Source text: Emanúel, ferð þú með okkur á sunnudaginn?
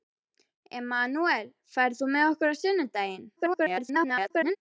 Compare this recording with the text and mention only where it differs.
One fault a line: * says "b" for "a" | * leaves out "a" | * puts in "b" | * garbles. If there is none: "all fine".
* garbles